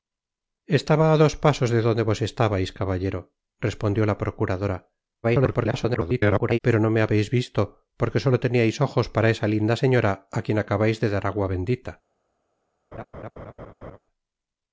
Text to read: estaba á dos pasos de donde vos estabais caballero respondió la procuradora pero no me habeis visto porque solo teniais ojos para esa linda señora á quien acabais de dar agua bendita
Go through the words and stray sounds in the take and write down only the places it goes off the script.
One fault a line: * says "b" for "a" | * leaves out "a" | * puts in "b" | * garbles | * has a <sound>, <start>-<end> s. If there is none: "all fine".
* garbles
* has a laugh, 12.9-14.0 s